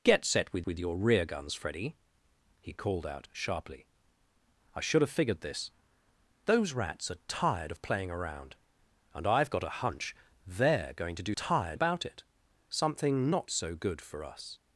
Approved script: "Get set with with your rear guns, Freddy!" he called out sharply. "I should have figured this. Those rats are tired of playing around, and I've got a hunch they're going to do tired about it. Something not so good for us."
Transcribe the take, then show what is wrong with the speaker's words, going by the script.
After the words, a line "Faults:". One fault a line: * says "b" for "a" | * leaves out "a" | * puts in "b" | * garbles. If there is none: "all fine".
"Get set with with your rear guns, Freddy!" he called out sharply. "I should have figured this. Those rats are tired of playing around, and I've got a hunch they're going to do tired about it. Something not so good for us."
Faults:
all fine